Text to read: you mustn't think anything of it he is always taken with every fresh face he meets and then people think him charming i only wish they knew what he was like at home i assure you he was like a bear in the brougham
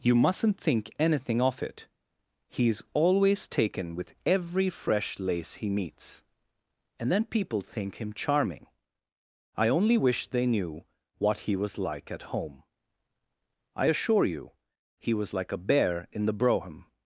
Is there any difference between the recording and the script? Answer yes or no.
yes